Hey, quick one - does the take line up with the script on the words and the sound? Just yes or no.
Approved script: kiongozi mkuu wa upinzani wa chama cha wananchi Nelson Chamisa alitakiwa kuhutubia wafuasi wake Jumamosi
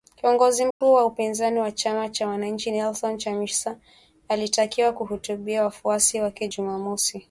no